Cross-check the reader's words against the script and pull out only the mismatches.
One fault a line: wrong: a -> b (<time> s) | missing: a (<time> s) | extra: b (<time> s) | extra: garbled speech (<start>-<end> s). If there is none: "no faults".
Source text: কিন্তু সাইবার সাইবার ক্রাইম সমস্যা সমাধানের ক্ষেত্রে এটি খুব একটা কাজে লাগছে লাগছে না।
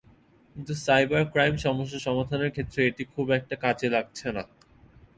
missing: সাইবার (1.2 s)
missing: লাগছে (4.3 s)